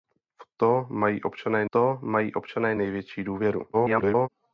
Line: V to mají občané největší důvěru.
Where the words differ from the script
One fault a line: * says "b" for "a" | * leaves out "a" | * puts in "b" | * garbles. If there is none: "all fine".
* puts in "to mají občané"
* garbles